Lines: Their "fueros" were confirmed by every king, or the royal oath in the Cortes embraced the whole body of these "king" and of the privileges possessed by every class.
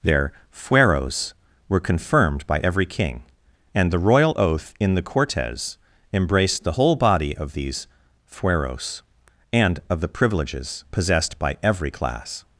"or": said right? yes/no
no